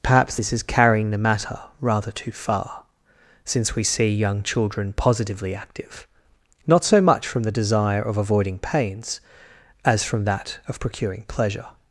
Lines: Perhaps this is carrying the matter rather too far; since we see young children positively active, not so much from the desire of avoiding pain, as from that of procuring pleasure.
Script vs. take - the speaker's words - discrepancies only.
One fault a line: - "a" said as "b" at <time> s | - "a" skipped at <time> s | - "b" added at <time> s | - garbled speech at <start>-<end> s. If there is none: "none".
- "pain" said as "pains" at 8.6 s